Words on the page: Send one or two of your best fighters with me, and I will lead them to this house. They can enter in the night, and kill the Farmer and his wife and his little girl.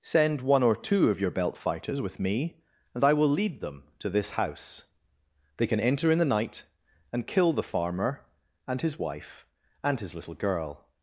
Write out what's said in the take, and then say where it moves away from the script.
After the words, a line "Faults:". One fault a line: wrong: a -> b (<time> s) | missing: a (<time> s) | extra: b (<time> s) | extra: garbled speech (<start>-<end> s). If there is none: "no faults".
Send one or two of your belt fighters with me, and I will lead them to this house. They can enter in the night, and kill the Farmer and his wife and his little girl.
Faults:
wrong: best -> belt (1.3 s)